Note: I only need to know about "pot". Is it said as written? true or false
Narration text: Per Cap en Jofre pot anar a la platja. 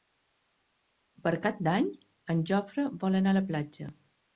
false